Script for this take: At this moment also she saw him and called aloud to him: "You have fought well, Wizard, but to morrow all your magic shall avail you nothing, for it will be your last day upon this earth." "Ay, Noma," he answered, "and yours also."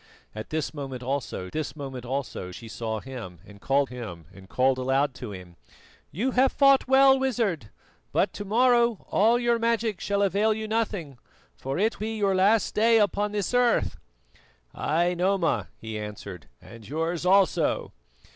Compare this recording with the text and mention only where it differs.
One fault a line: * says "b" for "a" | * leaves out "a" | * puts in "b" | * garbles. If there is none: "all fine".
* puts in "this moment also"
* puts in "him and called"
* leaves out "will"